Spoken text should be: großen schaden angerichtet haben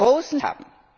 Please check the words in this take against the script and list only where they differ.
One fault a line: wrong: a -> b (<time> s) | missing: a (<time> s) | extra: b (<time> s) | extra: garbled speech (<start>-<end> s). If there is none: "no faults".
missing: schaden angerichtet (0.4 s)